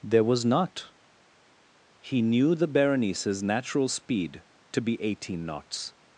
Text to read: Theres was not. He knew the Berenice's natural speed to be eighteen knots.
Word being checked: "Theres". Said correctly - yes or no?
no